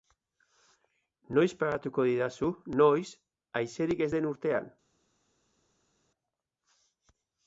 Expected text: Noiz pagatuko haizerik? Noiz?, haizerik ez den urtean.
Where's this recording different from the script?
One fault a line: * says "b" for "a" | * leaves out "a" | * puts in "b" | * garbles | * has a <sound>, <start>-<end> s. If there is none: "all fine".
* says "didazu" for "haizerik"